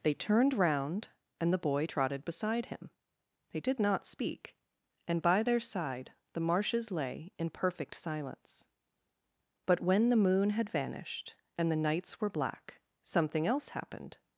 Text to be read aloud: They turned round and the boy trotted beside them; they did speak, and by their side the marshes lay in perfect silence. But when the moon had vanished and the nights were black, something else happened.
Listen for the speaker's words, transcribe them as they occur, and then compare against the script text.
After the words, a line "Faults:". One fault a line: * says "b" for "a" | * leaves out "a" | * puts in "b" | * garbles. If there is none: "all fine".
They turned round and the boy trotted beside him; they did not speak, and by their side the marshes lay in perfect silence. But when the moon had vanished and the nights were black, something else happened.
Faults:
* says "him" for "them"
* puts in "not"